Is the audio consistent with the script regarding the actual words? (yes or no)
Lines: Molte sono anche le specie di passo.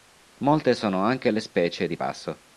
yes